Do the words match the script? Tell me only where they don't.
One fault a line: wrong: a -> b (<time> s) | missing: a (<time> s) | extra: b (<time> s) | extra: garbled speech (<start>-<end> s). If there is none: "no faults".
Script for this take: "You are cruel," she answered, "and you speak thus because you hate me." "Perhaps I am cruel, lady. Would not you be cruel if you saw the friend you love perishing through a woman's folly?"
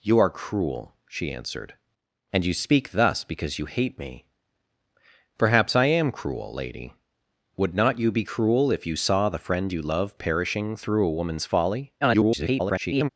extra: garbled speech (12.0-13.1 s)